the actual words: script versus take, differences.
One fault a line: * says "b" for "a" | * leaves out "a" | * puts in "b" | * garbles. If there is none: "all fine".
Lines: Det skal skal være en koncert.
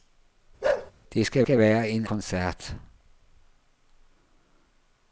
all fine